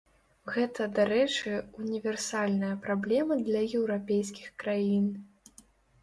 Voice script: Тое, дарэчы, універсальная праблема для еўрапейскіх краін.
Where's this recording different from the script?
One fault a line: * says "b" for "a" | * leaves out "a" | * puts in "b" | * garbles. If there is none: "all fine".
* says "Гэта" for "Тое"